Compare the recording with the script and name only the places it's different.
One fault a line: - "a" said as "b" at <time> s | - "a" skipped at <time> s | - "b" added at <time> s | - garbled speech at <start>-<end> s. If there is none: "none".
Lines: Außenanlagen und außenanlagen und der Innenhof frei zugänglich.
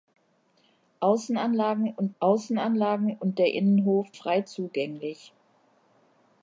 none